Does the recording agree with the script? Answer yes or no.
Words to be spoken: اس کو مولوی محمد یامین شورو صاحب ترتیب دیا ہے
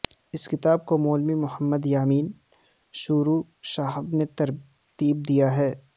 no